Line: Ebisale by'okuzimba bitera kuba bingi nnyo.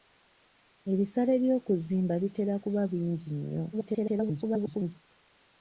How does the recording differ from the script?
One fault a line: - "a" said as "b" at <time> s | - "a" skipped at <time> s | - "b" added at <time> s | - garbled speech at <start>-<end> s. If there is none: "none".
- garbled speech at 3.7-5.0 s